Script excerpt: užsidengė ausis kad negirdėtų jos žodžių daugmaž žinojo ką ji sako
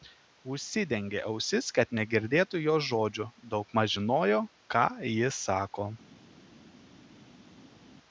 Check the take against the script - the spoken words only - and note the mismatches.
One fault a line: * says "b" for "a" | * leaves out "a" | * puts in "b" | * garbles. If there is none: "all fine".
all fine